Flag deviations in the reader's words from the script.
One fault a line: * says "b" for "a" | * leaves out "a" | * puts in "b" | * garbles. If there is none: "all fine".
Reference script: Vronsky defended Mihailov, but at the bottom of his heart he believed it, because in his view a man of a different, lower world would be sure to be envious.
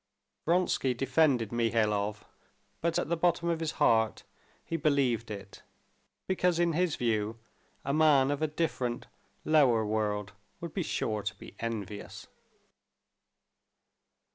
all fine